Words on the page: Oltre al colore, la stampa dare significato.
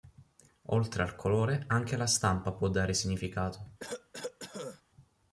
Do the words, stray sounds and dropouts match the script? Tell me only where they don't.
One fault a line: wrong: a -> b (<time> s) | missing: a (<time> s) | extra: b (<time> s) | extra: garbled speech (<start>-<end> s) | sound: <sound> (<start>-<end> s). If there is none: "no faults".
extra: anche (1.7 s)
extra: può (2.5 s)
sound: cough (3.8-4.8 s)